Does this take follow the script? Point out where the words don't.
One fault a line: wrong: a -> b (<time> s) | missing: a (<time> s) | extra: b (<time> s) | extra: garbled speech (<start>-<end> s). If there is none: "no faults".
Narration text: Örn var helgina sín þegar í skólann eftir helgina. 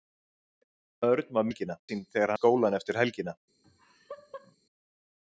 no faults